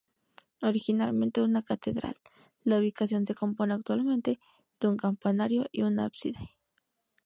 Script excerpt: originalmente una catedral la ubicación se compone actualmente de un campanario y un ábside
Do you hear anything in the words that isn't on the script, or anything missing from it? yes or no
no